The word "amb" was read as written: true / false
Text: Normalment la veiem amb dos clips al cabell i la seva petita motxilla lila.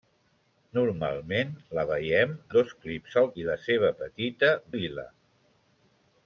false